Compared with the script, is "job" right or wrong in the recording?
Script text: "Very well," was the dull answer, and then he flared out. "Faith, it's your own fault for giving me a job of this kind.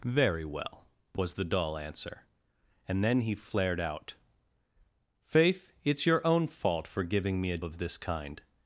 wrong